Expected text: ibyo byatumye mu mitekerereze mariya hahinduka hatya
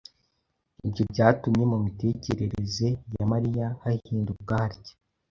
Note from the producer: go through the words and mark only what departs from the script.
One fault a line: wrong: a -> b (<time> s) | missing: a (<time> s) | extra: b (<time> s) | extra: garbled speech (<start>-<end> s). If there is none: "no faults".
extra: ya (3.1 s)